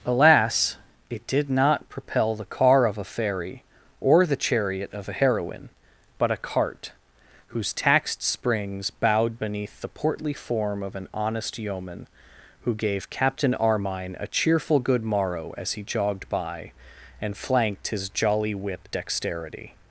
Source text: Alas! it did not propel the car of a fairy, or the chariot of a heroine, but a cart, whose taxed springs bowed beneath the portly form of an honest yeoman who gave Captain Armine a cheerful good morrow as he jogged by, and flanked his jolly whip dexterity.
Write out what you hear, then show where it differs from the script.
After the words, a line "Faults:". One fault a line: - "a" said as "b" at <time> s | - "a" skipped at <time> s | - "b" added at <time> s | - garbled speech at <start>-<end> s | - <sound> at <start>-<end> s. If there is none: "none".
Alas! it did not propel the car of a fairy, or the chariot of a heroine, but a cart, whose taxed springs bowed beneath the portly form of an honest yeoman who gave Captain Armine a cheerful good morrow as he jogged by, and flanked his jolly whip dexterity.
Faults:
none